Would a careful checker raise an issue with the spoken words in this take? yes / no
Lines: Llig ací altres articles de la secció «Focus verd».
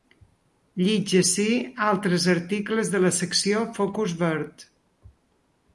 no